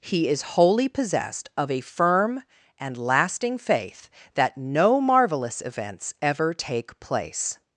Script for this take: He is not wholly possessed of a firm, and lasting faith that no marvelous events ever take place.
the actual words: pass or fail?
fail